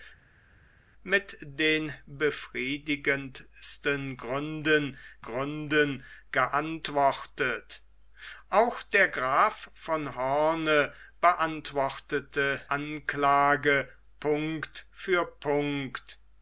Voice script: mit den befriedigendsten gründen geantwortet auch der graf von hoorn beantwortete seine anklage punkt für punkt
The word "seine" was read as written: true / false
false